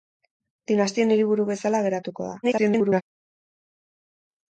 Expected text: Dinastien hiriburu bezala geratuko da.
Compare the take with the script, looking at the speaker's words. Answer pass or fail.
fail